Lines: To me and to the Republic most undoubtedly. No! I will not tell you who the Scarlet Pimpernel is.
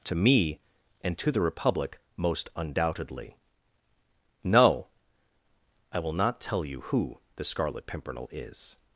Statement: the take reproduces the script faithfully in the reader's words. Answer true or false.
true